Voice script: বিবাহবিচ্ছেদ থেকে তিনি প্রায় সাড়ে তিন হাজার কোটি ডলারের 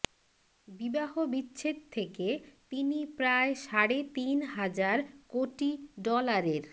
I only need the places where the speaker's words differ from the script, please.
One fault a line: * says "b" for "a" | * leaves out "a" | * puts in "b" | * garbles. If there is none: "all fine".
all fine